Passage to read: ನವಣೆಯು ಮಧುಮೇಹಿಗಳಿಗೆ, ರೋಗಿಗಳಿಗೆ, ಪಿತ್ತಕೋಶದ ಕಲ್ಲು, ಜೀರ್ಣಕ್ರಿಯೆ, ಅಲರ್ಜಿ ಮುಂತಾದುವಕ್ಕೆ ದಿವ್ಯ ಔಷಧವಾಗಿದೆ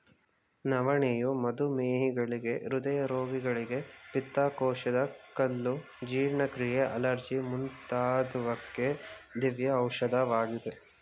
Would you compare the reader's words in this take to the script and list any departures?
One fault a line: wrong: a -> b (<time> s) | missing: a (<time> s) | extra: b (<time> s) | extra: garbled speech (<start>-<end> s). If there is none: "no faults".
extra: ಹೃದಯ (2.6 s)